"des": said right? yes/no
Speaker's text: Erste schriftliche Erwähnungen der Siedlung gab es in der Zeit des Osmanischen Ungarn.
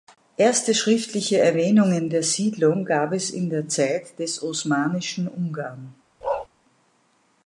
yes